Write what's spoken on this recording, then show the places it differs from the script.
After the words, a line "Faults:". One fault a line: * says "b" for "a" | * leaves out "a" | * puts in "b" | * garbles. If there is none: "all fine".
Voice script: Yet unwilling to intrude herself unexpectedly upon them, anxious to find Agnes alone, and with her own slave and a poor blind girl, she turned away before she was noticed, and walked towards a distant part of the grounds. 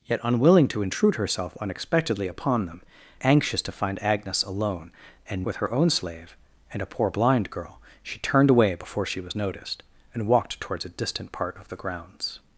Yet unwilling to intrude herself unexpectedly upon them, anxious to find Agnes alone, and with her own slave and a poor blind girl, she turned away before she was noticed, and walked towards a distant part of the grounds.
Faults:
all fine